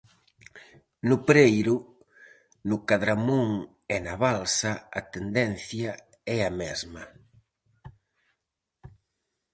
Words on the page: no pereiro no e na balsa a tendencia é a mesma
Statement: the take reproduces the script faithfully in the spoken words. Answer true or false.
false